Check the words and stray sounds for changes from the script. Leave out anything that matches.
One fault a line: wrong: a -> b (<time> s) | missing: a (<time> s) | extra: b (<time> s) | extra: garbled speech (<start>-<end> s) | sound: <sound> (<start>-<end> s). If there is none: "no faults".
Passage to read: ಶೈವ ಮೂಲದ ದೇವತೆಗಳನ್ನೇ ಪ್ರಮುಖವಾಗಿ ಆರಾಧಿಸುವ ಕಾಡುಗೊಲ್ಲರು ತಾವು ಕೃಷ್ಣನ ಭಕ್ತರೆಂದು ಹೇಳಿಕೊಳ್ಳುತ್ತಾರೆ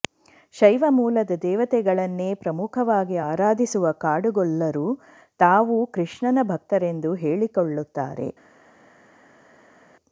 no faults